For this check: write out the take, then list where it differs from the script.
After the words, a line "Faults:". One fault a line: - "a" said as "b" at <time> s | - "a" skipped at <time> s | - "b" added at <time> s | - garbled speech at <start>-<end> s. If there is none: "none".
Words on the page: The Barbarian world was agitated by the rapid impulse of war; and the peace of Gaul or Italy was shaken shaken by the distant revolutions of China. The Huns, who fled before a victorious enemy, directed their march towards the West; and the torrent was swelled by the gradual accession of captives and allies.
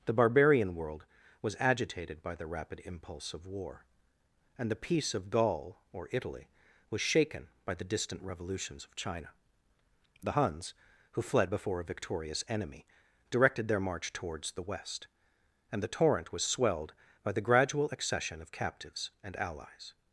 The Barbarian world was agitated by the rapid impulse of war; and the peace of Gaul or Italy was shaken by the distant revolutions of China. The Huns, who fled before a victorious enemy, directed their march towards the West; and the torrent was swelled by the gradual accession of captives and allies.
Faults:
- "shaken" skipped at 7.5 s